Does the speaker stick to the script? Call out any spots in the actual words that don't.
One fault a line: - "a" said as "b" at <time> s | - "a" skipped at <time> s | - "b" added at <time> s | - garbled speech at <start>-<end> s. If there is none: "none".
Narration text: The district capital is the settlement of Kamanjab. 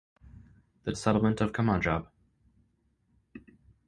- "district capital is" skipped at 0.9 s